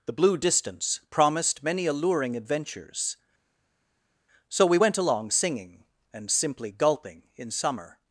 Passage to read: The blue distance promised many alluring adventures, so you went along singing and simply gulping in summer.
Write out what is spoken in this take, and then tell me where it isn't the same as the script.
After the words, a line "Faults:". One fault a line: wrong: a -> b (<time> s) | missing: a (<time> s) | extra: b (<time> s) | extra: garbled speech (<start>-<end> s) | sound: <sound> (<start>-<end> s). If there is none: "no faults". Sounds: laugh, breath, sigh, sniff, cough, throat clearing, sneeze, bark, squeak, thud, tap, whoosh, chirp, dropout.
The blue distance promised many alluring adventures, so we went along singing and simply gulping in summer.
Faults:
wrong: you -> we (4.6 s)